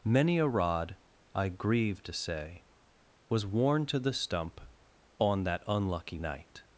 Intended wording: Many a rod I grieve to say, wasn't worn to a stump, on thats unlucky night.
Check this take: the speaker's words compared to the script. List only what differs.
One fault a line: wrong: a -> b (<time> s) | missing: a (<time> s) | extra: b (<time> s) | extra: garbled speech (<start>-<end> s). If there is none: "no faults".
wrong: wasn't -> was (3.3 s)
wrong: a -> the (4.0 s)
wrong: thats -> that (5.4 s)